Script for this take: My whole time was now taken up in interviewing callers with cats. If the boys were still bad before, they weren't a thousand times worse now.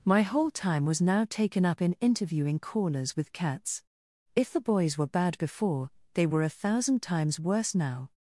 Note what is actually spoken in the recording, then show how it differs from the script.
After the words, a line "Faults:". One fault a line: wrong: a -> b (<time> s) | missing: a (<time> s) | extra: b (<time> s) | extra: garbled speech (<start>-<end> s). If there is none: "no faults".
My whole time was now taken up in interviewing callers with cats. If the boys were bad before, they were a thousand times worse now.
Faults:
missing: still (5.0 s)
wrong: weren't -> were (6.2 s)